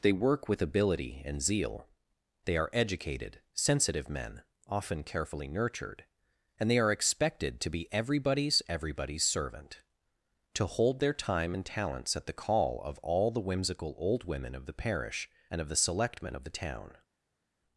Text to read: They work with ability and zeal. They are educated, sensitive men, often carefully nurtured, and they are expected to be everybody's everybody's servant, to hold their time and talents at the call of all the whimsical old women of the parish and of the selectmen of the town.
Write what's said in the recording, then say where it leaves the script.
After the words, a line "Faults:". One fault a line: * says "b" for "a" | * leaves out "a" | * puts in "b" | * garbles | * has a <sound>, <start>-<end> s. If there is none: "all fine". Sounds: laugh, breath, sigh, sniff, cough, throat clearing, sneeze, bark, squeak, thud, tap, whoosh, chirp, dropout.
They work with ability and zeal. They are educated, sensitive men, often carefully nurtured, and they are expected to be everybody's everybody's servant, to hold their time and talents at the call of all the whimsical old women of the parish and of the selectmen of the town.
Faults:
all fine